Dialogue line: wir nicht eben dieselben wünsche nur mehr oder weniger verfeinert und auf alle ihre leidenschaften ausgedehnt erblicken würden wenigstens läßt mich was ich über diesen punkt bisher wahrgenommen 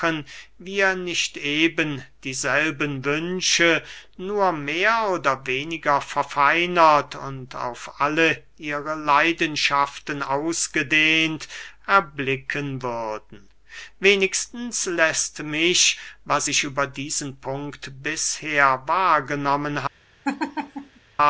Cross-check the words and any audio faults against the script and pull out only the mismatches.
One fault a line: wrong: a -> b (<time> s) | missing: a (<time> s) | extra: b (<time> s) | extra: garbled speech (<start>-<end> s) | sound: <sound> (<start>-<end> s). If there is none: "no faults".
sound: laugh (20.2-21.0 s)